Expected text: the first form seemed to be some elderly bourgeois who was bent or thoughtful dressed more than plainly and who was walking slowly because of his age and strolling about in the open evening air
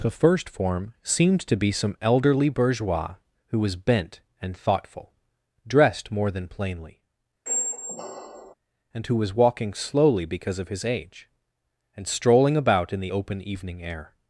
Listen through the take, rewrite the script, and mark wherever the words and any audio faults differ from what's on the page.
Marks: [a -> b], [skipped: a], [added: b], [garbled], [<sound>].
the first form seemed to be some elderly bourgeois who was bent [or -> and] thoughtful dressed more than plainly [squeak] and who was walking slowly because of his age and strolling about in the open evening air